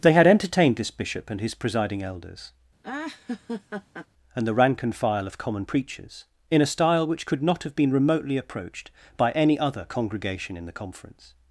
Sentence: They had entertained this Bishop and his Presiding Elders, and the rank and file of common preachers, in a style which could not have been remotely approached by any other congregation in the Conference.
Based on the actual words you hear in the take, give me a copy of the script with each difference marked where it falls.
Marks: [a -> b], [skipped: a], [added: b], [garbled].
They had entertained this Bishop and his Presiding Elders, and the rank and file of common preachers, in a style which could not have been remotely approached by any other congregation in the Conference.